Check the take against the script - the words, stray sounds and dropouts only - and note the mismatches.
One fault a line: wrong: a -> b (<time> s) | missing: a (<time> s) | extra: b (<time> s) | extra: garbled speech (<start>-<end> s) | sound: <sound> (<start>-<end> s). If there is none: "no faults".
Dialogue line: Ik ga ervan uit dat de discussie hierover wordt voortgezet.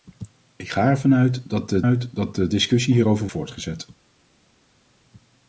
extra: uit dat de (1.8 s)
missing: wordt (3.3 s)